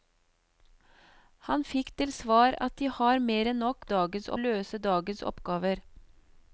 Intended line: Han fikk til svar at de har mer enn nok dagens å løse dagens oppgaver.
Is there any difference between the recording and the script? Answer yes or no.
no